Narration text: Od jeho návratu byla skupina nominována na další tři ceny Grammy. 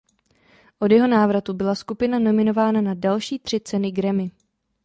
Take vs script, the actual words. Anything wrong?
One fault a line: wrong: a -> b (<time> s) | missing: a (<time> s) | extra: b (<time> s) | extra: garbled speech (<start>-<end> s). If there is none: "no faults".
no faults